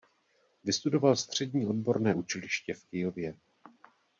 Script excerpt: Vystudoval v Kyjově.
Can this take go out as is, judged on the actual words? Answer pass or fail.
fail